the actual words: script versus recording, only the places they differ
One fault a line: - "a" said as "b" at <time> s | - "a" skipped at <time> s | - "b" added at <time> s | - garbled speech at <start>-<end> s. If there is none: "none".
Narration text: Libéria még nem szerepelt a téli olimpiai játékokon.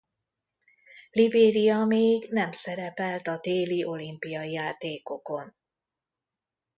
none